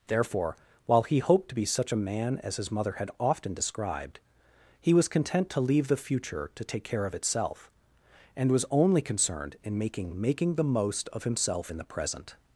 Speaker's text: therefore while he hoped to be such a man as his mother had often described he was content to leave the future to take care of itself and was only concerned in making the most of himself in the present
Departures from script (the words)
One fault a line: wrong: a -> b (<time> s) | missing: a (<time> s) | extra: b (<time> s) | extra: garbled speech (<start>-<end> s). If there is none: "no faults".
extra: making (10.2 s)